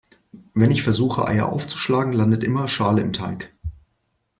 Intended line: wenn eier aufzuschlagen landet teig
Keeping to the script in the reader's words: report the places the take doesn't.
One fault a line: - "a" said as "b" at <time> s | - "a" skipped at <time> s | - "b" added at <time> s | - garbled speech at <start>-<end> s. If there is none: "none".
- "ich versuche" added at 0.7 s
- "immer schale im" added at 2.4 s